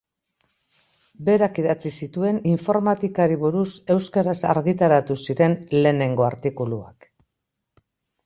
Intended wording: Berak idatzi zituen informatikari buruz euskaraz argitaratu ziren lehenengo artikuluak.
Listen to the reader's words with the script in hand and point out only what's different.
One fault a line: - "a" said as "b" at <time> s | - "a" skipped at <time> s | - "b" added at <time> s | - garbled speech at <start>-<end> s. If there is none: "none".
none